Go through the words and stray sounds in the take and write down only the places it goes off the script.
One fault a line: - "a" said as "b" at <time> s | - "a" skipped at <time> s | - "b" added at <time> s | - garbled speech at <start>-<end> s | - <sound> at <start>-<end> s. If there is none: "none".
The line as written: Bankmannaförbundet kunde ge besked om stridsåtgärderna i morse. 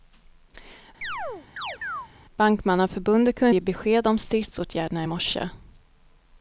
- chirp at 1.0-2.1 s